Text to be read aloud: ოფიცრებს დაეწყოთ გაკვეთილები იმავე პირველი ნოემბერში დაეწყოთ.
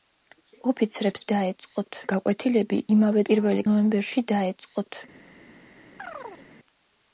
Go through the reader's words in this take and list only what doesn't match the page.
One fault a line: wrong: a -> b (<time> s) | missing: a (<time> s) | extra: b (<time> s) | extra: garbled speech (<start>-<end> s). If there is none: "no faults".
no faults